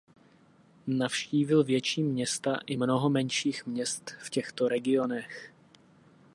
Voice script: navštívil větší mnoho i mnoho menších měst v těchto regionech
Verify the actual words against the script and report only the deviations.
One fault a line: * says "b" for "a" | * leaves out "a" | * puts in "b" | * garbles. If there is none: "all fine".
* says "města" for "mnoho"